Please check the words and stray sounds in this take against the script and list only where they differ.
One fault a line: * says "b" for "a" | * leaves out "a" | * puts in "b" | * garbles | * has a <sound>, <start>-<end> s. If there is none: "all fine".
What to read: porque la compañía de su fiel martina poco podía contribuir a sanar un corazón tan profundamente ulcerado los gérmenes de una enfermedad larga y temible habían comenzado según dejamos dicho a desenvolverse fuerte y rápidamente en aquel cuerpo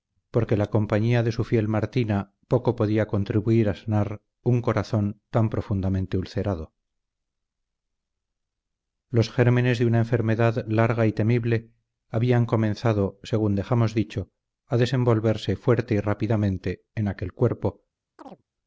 * has a chirp, 18.2-18.4 s